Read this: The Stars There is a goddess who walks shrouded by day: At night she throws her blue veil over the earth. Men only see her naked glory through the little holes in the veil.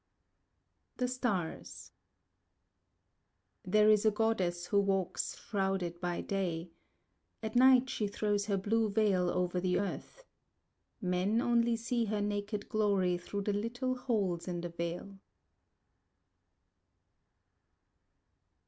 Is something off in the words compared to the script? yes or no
no